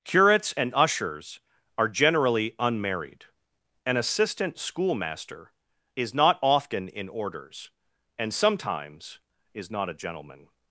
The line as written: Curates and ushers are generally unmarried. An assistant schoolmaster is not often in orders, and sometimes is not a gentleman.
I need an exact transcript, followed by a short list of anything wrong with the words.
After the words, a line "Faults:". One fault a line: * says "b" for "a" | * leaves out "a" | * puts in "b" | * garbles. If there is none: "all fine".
Curates and ushers are generally unmarried. An assistant schoolmaster is not often in orders, and sometimes is not a gentleman.
Faults:
all fine